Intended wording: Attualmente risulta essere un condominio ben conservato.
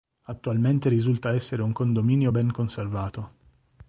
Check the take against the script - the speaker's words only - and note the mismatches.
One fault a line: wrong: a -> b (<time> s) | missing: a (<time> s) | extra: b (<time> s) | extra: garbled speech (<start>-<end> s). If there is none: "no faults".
no faults